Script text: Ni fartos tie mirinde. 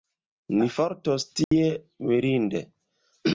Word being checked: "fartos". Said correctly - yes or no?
yes